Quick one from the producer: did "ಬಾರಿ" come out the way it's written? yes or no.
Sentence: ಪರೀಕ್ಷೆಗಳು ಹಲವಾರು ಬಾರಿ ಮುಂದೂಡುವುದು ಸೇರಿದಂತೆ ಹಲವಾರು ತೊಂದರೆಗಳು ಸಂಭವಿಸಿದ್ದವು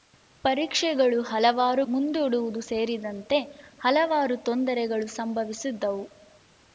no